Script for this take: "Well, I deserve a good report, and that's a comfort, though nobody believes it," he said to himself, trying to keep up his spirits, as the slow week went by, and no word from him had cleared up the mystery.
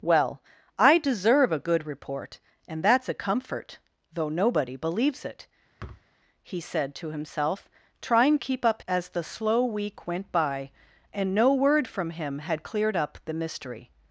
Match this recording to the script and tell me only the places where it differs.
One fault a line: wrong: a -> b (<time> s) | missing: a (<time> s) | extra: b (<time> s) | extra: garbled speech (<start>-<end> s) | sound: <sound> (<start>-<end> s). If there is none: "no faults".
sound: thud (5.8-6.1 s)
missing: to (8.4 s)
missing: his spirits (8.8 s)